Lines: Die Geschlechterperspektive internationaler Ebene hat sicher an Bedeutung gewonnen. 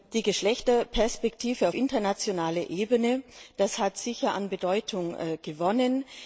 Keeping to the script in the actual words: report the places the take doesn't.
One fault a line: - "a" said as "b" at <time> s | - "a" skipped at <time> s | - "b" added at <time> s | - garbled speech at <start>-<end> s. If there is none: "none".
none